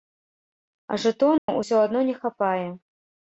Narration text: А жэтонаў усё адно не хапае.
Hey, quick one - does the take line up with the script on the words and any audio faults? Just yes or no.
no